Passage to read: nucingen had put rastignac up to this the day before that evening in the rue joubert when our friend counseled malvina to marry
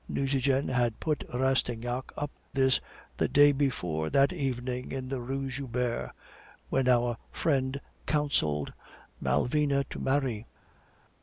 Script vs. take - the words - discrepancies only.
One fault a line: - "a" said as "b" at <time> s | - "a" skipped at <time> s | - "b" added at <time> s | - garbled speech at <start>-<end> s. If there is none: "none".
- "to" skipped at 2.3 s